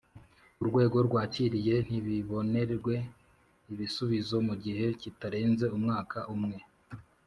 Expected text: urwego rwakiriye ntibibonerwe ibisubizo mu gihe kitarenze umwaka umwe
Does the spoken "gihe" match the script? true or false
true